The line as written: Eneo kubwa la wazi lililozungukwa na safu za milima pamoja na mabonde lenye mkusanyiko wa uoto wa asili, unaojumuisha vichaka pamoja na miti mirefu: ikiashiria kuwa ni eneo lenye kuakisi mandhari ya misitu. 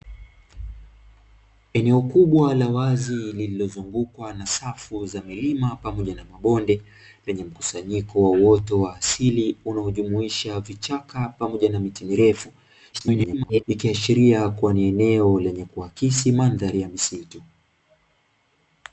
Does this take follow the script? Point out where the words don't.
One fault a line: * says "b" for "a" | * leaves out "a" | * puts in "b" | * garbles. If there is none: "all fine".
* garbles